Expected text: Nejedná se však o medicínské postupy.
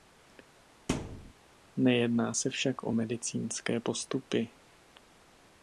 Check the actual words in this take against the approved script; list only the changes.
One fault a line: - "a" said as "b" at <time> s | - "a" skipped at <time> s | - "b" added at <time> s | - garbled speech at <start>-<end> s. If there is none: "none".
none